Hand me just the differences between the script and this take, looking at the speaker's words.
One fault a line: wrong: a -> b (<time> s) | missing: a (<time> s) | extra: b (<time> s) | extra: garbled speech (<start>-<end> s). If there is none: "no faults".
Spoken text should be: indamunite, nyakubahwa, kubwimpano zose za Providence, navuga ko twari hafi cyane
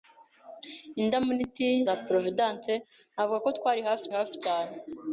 missing: nyakubahwa kubwimpano zose (1.7 s)
extra: hafi (4.2 s)